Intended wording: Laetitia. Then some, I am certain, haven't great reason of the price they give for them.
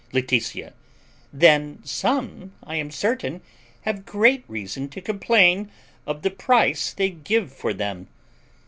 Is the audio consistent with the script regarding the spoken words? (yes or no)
no